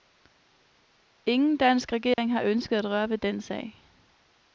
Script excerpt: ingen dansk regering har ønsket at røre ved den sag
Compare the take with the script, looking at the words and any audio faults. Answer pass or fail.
fail